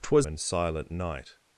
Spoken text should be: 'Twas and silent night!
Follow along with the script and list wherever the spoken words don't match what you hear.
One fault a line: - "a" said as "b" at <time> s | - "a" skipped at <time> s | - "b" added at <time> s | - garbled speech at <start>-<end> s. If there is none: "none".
none